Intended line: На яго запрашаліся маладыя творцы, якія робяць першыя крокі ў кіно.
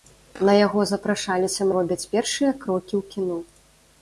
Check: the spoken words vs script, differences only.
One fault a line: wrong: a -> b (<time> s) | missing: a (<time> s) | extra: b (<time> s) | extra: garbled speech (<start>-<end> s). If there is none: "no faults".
missing: маладыя творцы якія (1.7 s)